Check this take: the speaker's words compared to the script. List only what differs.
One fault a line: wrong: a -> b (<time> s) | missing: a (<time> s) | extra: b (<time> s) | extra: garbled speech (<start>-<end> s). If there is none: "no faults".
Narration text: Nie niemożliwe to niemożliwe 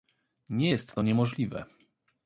wrong: niemożliwe -> jest (0.7 s)